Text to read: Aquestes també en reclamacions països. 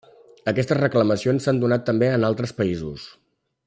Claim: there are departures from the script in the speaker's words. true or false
true